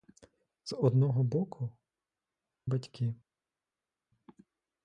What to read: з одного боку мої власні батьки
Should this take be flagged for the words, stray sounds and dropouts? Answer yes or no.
yes